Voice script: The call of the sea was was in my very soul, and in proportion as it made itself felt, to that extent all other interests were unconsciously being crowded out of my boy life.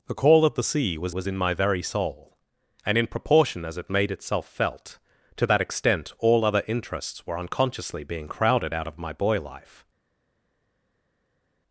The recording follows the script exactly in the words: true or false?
true